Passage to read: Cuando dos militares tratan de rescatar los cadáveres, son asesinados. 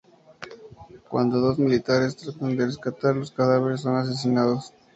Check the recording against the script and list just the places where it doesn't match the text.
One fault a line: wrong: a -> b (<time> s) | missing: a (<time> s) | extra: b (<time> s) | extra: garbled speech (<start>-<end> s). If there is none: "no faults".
no faults